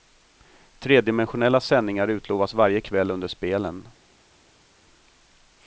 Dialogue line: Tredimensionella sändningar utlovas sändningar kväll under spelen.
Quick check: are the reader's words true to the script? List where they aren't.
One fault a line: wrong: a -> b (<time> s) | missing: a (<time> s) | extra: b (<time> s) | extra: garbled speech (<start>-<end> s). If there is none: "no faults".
wrong: sändningar -> varje (2.5 s)